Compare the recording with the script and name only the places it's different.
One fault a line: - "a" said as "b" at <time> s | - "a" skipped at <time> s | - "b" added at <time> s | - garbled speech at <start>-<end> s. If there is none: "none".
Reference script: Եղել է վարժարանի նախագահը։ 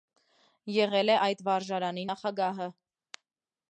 - "այդ" added at 1.2 s